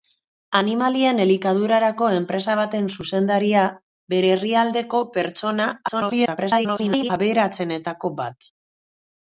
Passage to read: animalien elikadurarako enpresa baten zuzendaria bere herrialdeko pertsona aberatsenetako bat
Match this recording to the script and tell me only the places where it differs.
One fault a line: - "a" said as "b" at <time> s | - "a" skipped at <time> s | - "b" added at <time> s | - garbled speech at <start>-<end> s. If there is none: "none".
- garbled speech at 5.9-7.1 s